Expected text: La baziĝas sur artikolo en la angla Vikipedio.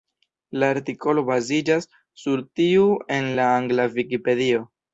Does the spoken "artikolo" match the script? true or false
false